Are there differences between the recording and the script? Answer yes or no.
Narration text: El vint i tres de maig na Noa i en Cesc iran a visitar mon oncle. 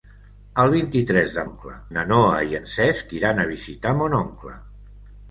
yes